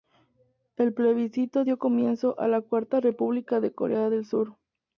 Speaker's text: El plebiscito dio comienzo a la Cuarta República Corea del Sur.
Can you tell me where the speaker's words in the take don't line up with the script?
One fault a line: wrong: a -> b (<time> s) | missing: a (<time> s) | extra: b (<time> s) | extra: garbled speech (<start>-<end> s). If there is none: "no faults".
extra: de (3.6 s)